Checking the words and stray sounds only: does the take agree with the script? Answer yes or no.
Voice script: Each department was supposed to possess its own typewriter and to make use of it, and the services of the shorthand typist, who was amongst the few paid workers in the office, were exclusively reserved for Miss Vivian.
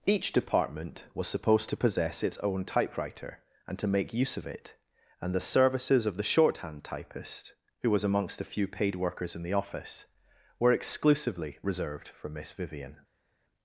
no